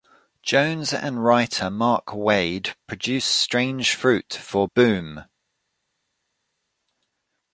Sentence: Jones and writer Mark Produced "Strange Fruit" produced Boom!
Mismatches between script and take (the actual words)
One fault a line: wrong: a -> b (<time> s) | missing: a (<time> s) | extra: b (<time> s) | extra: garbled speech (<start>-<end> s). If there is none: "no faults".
extra: Waid (2.1 s)
wrong: produced -> for (4.3 s)